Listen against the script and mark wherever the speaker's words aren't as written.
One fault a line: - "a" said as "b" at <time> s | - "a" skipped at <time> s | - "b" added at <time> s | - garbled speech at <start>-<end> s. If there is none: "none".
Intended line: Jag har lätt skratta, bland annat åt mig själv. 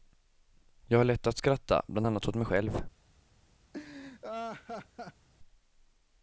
- "att" added at 1.3 s